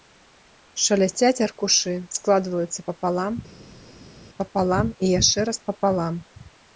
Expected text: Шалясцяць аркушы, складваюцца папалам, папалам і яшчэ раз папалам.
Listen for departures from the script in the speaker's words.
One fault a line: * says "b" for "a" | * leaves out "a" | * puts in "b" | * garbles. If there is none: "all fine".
all fine